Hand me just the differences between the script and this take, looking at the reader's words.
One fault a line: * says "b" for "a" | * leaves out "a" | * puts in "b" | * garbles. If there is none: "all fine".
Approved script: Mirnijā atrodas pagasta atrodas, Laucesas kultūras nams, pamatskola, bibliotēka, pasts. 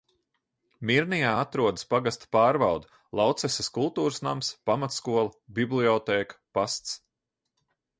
* says "pārvalde" for "atrodas"